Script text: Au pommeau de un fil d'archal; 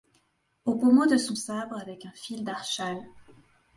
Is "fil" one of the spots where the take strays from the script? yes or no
no